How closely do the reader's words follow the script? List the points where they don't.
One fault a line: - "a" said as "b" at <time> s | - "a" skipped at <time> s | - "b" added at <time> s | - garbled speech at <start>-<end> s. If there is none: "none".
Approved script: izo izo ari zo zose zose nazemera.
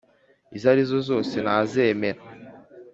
- "izo" skipped at 0.7 s
- "zose" skipped at 1.4 s